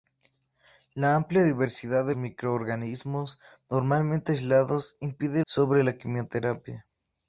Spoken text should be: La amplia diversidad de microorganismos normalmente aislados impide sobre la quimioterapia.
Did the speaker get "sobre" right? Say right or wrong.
right